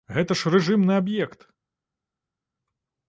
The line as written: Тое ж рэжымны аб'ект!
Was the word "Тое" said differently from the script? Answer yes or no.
yes